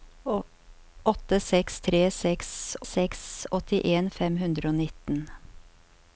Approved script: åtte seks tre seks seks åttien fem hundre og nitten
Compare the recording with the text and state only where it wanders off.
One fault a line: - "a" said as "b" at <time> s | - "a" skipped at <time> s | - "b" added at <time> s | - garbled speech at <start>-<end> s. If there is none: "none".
none